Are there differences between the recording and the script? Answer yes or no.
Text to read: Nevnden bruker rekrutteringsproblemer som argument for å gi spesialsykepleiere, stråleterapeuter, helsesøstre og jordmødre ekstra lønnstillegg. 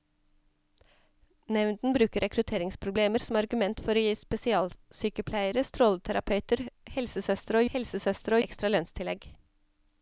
yes